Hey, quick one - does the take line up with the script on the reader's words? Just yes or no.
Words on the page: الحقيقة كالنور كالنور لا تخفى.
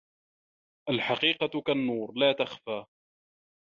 no